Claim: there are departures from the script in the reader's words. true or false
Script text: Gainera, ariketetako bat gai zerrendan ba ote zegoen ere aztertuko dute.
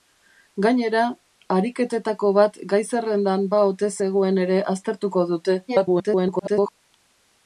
true